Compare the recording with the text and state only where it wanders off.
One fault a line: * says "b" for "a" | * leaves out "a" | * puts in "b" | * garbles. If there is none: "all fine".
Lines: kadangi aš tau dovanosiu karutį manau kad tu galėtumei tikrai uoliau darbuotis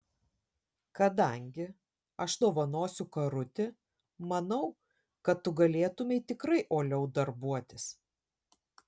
* leaves out "tau"